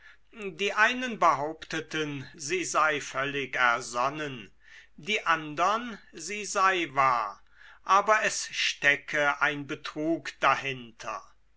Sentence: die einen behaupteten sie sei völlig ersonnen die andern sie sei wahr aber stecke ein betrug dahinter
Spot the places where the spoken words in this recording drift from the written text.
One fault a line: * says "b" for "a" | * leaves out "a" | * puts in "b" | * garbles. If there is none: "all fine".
* puts in "es"